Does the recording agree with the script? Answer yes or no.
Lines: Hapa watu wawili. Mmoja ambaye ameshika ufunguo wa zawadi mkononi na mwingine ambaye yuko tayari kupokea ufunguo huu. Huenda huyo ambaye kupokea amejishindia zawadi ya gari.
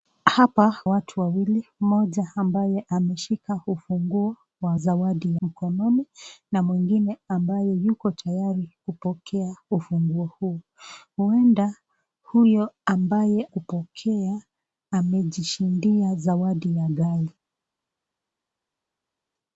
yes